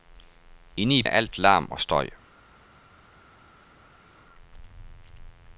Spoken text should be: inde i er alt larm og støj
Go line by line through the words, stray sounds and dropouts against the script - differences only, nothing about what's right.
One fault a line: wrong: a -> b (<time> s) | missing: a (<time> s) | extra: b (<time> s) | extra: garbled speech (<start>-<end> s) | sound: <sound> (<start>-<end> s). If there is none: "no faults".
no faults